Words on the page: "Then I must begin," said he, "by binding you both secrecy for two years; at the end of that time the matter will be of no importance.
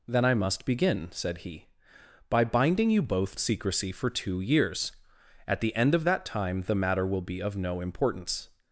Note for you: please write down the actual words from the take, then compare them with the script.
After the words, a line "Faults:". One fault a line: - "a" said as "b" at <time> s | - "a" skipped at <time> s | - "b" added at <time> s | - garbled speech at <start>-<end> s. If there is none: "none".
"Then I must begin," said he, "by binding you both secrecy for two years; at the end of that time the matter will be of no importance.
Faults:
none